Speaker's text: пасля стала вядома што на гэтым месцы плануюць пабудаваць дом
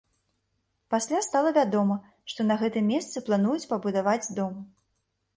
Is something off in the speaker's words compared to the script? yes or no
no